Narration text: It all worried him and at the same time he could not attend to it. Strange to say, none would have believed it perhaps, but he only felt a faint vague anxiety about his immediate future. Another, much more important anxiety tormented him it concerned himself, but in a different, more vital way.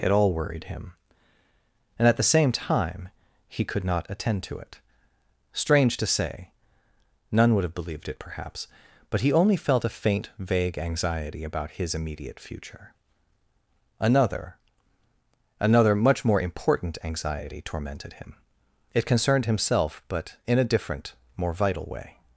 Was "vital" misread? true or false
false